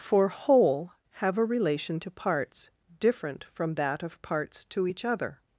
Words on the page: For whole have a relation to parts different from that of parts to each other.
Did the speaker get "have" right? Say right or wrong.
right